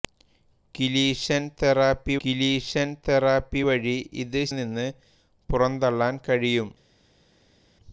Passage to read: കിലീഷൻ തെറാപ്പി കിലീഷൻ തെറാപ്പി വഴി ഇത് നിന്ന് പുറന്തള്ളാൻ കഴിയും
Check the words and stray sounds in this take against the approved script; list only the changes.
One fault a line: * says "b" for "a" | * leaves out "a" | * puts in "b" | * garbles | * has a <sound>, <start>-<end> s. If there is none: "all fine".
all fine